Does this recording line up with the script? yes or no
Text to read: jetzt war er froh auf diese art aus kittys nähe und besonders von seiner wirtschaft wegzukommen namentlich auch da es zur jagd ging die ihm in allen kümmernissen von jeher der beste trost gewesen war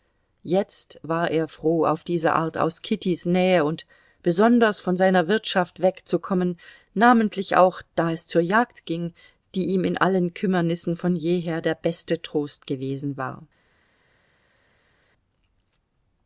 yes